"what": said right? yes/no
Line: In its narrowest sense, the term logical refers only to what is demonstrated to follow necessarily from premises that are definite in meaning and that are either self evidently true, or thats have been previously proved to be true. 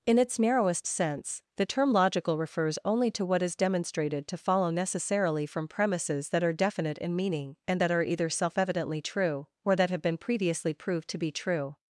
yes